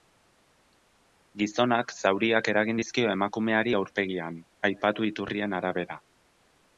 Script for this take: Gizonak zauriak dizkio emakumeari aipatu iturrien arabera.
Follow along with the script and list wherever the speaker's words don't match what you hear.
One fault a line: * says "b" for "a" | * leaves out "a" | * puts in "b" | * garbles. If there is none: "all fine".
* puts in "eragin"
* puts in "aurpegian"